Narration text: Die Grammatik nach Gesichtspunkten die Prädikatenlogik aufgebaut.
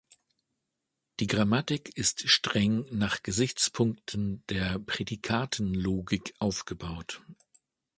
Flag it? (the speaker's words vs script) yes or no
yes